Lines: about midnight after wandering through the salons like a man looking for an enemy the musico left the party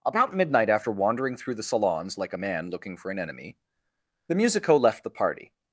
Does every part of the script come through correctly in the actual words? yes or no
yes